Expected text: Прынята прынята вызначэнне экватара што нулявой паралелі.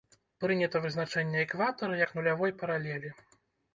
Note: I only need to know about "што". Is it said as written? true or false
false